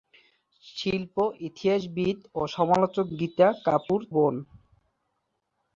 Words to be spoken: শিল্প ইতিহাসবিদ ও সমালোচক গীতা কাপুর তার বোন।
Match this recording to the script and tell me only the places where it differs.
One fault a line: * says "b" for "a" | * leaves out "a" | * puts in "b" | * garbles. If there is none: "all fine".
* leaves out "তার"